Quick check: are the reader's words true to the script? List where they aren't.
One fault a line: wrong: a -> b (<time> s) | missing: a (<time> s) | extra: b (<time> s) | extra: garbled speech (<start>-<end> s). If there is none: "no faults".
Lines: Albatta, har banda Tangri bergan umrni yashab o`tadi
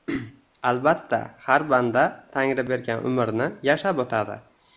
no faults